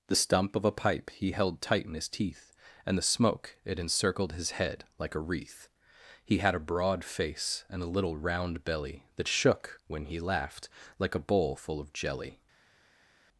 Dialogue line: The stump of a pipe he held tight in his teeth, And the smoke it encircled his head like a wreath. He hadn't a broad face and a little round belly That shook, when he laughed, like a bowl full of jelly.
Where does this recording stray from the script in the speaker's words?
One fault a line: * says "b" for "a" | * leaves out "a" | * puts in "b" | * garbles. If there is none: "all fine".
* says "had" for "hadn't"